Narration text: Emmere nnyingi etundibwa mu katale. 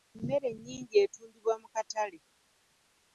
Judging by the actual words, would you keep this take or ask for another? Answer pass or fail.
pass